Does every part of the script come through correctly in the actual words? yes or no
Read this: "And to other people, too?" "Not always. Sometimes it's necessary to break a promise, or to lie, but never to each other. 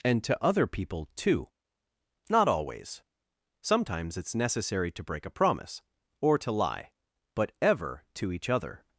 no